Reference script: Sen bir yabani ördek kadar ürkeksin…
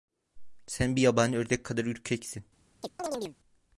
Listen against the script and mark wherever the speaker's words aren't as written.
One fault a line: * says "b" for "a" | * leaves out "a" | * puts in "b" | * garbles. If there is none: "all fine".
all fine